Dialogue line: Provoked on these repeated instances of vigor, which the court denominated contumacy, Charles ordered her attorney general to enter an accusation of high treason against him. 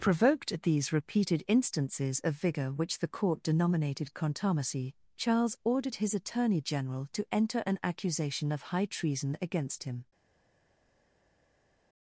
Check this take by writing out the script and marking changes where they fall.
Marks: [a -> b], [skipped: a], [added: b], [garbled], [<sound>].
Provoked [on -> at] these repeated instances of vigor, which the court denominated contumacy, Charles ordered [her -> his] attorney general to enter an accusation of high treason against him.